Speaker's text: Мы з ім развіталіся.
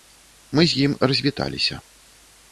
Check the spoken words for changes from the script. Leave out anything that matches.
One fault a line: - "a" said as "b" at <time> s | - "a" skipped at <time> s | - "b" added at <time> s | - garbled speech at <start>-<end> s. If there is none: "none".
none